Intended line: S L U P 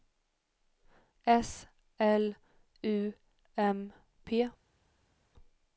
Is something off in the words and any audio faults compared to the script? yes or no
yes